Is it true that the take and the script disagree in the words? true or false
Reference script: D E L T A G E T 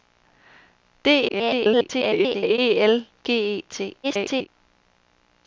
true